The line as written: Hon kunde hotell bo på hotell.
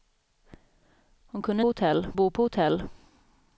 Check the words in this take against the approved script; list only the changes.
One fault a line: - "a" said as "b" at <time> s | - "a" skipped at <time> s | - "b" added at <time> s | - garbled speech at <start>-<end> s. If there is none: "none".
none